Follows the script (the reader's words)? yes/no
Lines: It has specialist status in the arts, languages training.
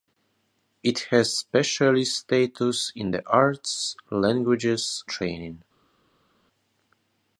yes